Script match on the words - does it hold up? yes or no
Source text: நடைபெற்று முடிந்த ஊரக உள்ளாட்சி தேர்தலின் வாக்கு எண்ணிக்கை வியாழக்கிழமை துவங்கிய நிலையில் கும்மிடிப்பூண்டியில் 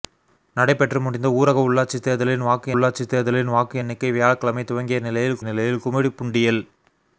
no